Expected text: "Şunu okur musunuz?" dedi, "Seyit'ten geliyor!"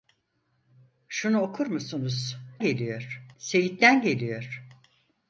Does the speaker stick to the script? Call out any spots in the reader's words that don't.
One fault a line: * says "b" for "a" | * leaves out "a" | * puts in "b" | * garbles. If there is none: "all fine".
* says "geliyor" for "dedi"